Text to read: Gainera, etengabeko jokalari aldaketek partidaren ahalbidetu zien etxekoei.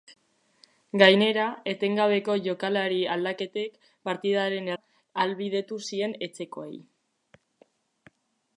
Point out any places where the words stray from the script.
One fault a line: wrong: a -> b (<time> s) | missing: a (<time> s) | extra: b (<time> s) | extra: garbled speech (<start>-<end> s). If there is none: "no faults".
no faults